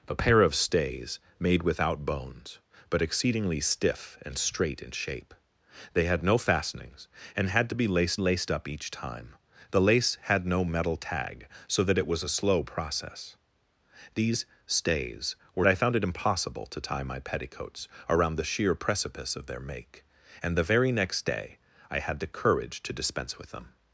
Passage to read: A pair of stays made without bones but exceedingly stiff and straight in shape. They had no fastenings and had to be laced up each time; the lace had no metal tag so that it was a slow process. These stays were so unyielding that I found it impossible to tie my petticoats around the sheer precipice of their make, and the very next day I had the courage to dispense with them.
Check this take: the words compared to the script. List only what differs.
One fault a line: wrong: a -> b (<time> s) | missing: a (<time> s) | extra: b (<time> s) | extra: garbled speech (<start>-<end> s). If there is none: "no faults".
extra: laced (8.2 s)
missing: so unyielding that (15.6 s)